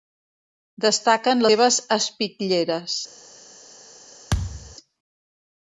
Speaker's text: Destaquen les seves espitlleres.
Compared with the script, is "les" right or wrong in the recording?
wrong